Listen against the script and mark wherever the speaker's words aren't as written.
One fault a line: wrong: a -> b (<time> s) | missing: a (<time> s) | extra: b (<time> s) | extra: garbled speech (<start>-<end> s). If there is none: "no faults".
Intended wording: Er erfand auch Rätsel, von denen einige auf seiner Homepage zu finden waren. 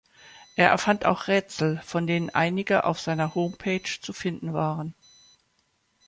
no faults